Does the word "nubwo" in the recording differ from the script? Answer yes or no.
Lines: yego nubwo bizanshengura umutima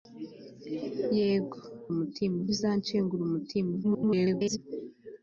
yes